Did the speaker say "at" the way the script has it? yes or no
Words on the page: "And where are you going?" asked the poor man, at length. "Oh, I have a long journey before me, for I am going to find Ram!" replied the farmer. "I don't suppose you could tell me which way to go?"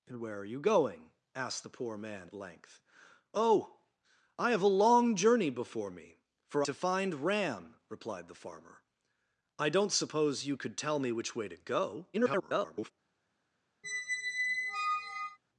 no